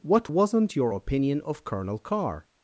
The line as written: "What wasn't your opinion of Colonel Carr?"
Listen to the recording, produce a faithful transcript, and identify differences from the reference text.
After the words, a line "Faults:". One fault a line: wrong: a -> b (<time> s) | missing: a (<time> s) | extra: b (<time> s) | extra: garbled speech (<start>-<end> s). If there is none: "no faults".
"What wasn't your opinion of Colonel Carr?"
Faults:
no faults